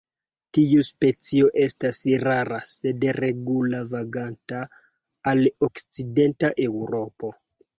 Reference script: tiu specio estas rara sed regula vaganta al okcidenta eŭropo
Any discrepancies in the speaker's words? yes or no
no